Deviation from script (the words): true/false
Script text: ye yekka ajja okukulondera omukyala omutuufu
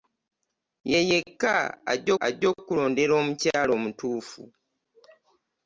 true